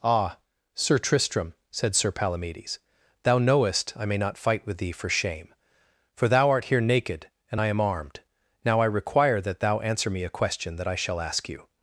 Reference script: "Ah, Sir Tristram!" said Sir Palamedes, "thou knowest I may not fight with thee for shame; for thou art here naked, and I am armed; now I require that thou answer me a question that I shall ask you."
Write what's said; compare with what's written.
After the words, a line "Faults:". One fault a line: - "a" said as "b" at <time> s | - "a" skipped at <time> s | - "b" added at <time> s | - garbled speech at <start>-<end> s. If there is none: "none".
"Ah, Sir Tristram!" said Sir Palamedes, "thou knowest I may not fight with thee for shame; for thou art here naked, and I am armed; now I require that thou answer me a question that I shall ask you."
Faults:
none